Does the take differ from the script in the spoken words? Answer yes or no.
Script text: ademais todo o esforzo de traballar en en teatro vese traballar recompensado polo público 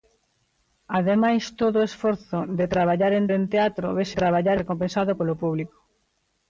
no